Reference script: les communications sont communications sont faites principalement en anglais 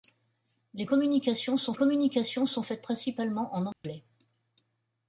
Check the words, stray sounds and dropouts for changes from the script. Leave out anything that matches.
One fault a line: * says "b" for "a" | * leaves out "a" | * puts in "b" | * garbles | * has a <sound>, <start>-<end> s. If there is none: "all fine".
* has a dropout, 3.7-3.8 s